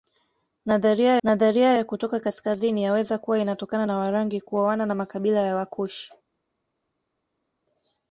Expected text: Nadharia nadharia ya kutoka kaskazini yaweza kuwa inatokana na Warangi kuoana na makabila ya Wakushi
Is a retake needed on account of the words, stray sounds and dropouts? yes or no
no